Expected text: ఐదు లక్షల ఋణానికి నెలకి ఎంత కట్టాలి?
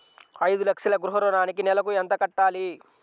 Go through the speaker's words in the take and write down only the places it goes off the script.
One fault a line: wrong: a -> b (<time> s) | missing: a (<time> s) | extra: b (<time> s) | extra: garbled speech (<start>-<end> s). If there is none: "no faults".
extra: గృహ (0.9 s)